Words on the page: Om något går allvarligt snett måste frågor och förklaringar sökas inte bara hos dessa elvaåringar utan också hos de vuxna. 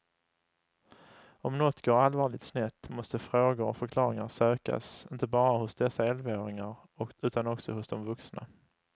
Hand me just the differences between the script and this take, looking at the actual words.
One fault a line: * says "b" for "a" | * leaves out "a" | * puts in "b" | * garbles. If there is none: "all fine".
all fine